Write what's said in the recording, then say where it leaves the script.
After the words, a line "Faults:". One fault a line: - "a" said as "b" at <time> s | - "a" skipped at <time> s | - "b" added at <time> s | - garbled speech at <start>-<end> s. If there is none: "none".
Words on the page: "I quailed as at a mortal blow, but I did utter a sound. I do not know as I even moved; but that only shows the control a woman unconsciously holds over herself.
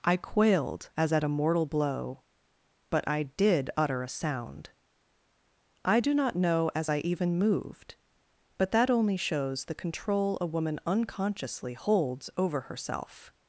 "I quailed as at a mortal blow, but I did utter a sound. I do not know as I even moved; but that only shows the control a woman unconsciously holds over herself.
Faults:
none